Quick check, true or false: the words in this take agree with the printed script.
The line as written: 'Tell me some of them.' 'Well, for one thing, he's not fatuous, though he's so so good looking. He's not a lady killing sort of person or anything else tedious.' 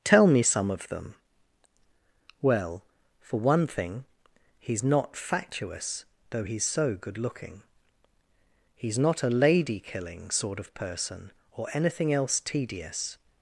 false